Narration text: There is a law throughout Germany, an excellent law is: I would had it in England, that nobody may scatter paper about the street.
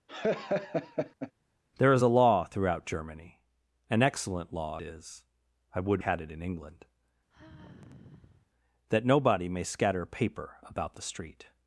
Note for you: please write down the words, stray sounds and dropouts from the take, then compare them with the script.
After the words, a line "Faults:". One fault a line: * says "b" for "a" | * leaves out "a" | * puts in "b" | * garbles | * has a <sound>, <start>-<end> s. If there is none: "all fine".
There is a law throughout Germany, an excellent law is: I would had it in England, that nobody may scatter paper about the street.
Faults:
* has a laugh, 0.1-1.3 s
* has a sigh, 7.3-8.5 s